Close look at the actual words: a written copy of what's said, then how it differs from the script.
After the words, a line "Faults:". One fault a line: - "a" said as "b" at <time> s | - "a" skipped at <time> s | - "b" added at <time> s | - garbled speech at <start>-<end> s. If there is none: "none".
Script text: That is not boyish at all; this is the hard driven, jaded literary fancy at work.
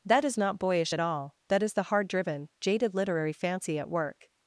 That is not boyish at all; that is the hard driven, jaded literary fancy at work.
Faults:
- "this" said as "that" at 1.5 s